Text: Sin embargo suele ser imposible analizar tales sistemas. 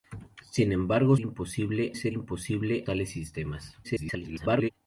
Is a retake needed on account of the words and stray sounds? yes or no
yes